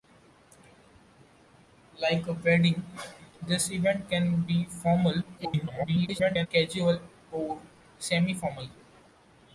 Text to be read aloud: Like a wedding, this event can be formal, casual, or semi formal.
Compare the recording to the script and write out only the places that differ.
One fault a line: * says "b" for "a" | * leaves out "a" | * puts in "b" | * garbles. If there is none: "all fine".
* garbles